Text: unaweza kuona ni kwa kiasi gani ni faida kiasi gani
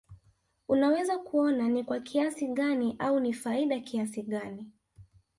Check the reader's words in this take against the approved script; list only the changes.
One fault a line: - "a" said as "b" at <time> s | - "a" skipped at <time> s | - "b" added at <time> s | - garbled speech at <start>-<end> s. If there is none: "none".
- "au" added at 3.0 s